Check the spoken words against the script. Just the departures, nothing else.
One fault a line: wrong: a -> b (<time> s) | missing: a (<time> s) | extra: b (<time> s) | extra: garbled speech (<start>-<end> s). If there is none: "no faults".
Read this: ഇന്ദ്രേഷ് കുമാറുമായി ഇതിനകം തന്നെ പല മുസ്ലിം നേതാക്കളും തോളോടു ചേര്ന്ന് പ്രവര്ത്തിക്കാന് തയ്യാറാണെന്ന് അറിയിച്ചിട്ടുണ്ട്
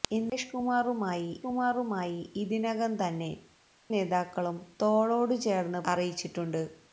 extra: കുമാറുമായി (1.4 s)
missing: പല മുസ്ലിം (3.3 s)
missing: പ്രവര്ത്തിക്കാന് തയ്യാറാണെന്ന് (5.8 s)